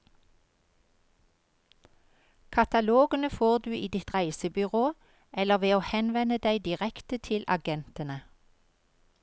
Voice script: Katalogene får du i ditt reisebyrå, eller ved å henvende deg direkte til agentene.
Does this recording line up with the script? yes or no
yes